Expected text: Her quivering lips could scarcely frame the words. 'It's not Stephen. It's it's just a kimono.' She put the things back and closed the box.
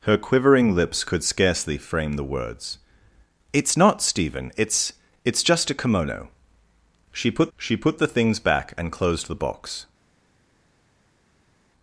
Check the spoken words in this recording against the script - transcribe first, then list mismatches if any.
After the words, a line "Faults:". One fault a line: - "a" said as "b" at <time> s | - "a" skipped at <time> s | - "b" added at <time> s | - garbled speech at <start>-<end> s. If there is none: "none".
Her quivering lips could scarcely frame the words. 'It's not Stephen. It's it's just a kimono.' She put she put the things back and closed the box.
Faults:
- "she put" added at 7.6 s